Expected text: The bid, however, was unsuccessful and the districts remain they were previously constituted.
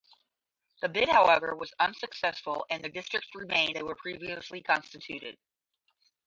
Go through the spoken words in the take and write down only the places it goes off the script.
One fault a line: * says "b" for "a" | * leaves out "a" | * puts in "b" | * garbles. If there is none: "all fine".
all fine